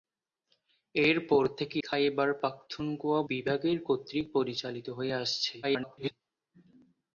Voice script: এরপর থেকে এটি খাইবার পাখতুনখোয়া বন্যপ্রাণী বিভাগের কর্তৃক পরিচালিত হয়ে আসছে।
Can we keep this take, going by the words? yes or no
no